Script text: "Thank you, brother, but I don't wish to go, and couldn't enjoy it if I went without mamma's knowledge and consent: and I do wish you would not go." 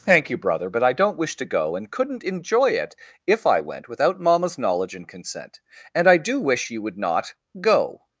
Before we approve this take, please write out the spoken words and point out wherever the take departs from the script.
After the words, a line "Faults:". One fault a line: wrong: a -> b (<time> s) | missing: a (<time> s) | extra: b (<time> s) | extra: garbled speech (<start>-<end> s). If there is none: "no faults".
"Thank you, brother, but I don't wish to go, and couldn't enjoy it if I went without mamma's knowledge and consent: and I do wish you would not go."
Faults:
no faults